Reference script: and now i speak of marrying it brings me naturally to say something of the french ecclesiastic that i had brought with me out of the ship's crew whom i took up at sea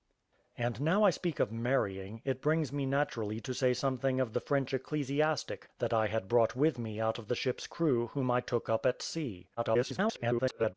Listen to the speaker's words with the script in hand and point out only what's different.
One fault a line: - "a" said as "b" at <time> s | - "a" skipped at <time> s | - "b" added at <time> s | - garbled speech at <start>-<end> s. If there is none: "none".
- garbled speech at 9.6-10.7 s